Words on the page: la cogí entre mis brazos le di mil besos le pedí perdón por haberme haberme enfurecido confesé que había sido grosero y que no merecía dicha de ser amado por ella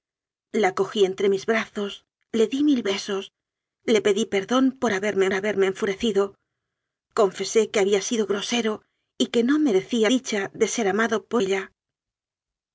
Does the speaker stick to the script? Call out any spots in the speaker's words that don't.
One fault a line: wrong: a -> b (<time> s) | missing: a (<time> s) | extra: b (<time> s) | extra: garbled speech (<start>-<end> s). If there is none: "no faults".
no faults